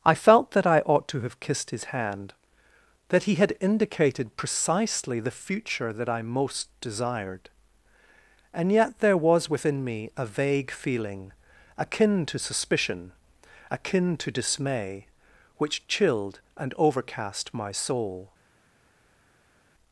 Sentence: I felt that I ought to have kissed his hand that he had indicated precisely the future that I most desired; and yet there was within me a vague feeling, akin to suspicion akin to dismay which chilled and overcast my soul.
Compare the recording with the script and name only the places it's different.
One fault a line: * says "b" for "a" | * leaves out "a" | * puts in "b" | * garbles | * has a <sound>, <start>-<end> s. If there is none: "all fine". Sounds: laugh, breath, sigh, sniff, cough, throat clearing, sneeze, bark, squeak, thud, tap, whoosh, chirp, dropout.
all fine